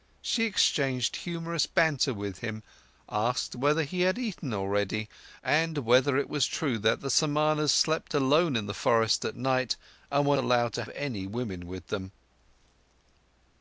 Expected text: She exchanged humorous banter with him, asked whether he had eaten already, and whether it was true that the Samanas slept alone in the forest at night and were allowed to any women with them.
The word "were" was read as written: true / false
true